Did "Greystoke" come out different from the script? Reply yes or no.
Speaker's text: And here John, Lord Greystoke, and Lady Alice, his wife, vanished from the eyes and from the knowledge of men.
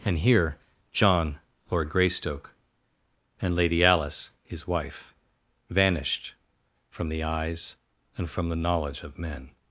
no